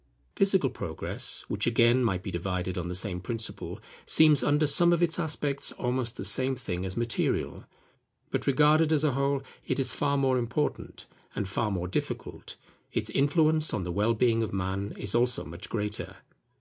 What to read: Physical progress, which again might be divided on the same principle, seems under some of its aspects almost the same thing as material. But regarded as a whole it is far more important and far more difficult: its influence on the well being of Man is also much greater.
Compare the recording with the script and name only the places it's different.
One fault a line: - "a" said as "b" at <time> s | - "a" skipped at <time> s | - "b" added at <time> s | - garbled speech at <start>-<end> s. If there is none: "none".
none